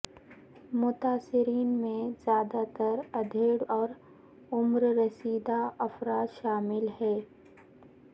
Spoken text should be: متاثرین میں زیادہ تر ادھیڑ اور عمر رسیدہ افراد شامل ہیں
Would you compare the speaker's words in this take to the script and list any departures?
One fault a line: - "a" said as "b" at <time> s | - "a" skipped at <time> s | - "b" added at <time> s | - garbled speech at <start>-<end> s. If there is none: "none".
none